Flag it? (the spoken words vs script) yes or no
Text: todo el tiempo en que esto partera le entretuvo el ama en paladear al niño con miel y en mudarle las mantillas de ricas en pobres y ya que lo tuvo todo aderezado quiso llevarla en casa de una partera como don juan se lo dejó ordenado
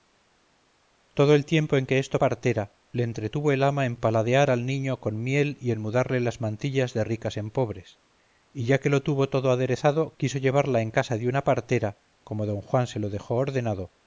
no